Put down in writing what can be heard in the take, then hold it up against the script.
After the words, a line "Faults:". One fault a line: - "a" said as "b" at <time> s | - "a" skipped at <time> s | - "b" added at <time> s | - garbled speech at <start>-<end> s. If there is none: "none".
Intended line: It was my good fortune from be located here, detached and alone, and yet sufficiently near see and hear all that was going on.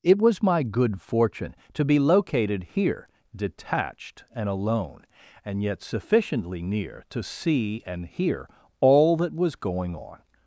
It was my good fortune to be located here, detached and alone, and yet sufficiently near to see and hear all that was going on.
Faults:
- "from" said as "to" at 1.7 s
- "to" added at 7.1 s